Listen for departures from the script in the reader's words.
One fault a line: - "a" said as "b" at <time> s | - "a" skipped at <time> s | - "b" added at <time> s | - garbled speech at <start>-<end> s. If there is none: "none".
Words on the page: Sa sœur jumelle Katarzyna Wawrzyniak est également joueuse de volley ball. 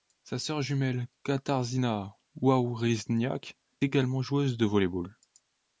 - "est" skipped at 3.6 s